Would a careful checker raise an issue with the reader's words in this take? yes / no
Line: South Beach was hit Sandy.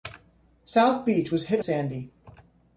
no